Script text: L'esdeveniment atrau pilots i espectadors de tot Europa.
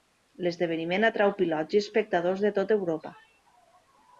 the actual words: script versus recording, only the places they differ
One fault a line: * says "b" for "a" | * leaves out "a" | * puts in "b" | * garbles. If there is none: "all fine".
all fine